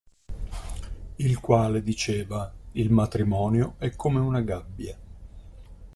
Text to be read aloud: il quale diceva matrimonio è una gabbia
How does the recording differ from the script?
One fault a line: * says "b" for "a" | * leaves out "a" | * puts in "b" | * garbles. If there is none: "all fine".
* puts in "il"
* puts in "come"